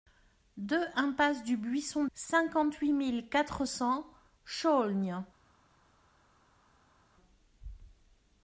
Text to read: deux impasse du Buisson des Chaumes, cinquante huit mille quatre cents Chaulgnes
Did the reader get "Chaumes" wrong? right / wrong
wrong